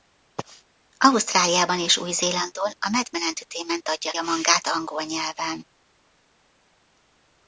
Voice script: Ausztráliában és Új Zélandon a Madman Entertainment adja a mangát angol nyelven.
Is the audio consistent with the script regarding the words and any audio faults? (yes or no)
yes